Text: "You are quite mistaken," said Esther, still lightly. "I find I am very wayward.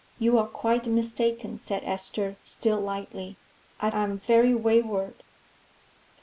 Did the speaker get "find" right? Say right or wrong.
wrong